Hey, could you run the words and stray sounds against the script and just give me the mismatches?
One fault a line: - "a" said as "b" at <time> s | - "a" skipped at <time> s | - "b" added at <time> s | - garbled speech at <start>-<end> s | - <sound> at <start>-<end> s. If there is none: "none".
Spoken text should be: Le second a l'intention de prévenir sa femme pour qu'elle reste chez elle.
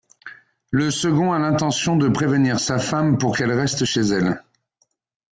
none